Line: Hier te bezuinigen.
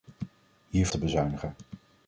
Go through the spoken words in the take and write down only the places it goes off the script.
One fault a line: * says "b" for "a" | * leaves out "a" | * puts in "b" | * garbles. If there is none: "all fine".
all fine